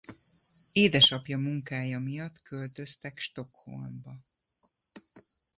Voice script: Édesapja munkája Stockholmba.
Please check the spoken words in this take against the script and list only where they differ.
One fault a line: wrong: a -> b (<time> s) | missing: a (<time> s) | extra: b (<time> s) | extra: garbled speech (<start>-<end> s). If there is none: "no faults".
extra: miatt költöztek (2.0 s)